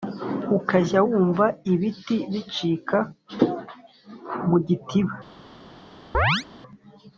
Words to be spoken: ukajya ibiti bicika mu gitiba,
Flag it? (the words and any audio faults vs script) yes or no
yes